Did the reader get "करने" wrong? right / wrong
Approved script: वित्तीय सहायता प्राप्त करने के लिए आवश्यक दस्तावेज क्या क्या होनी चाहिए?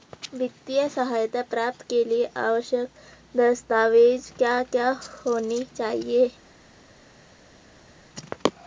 wrong